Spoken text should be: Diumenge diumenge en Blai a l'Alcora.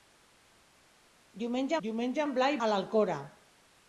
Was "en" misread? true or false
false